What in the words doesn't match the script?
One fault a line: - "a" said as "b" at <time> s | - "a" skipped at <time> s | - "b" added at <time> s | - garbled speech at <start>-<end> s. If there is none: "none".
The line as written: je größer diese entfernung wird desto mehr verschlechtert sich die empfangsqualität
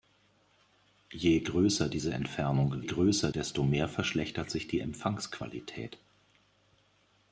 - "wird" said as "größer" at 2.8 s